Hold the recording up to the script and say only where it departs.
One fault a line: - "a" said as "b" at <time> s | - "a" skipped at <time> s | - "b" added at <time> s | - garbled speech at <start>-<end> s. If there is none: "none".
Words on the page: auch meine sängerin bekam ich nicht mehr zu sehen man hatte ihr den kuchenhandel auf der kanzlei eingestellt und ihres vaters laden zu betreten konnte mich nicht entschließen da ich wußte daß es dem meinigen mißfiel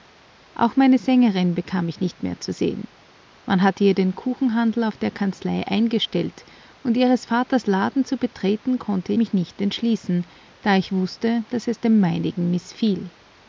none